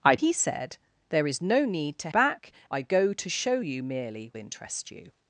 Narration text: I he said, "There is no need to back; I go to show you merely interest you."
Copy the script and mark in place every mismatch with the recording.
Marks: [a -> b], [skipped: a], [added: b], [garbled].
I he said, "There is no need to back; I go to show you merely interest you."